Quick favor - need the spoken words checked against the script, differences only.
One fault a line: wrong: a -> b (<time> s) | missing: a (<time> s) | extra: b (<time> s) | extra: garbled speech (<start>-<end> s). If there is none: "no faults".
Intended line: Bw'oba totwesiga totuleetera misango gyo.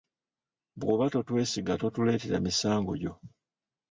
no faults